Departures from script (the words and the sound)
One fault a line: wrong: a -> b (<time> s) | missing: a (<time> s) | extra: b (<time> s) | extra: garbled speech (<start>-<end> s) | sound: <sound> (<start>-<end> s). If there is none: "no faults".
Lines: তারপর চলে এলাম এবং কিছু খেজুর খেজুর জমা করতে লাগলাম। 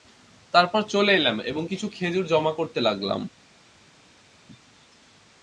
missing: খেজুর (2.2 s)